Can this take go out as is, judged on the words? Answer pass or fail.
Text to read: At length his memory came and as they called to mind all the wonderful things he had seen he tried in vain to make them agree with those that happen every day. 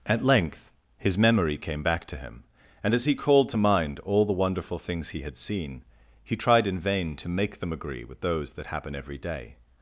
fail